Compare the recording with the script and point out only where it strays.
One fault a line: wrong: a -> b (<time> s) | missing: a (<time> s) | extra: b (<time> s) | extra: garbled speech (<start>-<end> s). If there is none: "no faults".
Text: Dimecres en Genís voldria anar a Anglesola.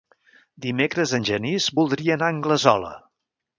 no faults